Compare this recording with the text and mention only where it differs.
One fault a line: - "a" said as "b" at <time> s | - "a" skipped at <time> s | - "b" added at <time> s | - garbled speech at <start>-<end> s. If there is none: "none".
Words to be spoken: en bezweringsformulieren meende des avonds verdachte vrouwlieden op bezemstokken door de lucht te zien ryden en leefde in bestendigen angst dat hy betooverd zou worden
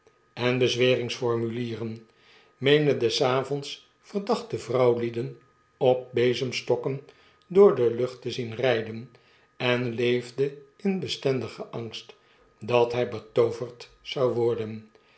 none